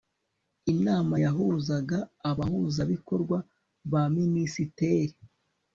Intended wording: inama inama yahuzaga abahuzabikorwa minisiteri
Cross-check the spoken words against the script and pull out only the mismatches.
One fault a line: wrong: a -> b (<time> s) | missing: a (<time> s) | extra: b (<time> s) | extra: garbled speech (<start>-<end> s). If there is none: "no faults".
missing: inama (1.1 s)
extra: ba (3.9 s)